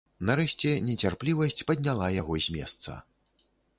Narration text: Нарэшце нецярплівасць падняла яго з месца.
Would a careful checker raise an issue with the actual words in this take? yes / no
no